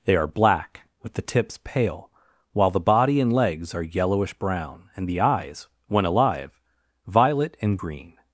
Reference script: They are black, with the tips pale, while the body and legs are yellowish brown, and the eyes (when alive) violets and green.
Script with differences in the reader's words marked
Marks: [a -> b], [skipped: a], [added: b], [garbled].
They are black, with the tips pale, while the body and legs are yellowish brown, and the eyes (when alive) [violets -> violet] and green.